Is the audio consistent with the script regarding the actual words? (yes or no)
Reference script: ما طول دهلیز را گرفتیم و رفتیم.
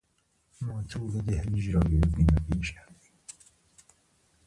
no